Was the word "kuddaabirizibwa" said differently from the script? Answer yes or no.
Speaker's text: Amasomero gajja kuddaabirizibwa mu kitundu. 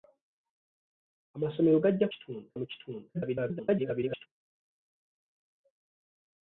yes